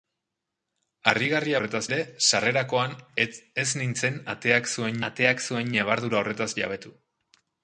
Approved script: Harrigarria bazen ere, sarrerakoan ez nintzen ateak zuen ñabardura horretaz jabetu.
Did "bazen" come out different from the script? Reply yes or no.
yes